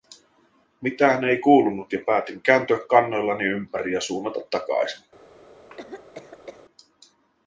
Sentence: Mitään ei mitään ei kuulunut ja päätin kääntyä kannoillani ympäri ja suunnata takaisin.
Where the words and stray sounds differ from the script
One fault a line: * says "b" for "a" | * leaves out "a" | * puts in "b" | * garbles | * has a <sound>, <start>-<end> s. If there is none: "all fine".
* leaves out "mitään ei"
* has a cough, 5.7-6.6 s